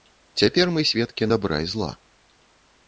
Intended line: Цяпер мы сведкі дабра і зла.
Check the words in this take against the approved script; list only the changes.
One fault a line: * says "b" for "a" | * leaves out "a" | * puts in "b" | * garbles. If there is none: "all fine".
all fine